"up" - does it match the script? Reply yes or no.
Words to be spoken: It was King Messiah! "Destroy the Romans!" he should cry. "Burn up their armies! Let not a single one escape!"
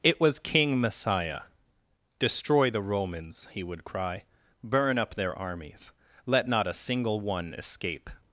yes